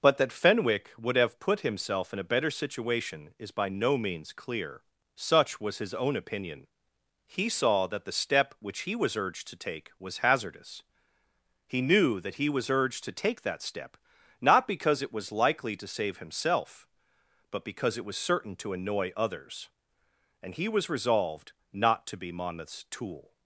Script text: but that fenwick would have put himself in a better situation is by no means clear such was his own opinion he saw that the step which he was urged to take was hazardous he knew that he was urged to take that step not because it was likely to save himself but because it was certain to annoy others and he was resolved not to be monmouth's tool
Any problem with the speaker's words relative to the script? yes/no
no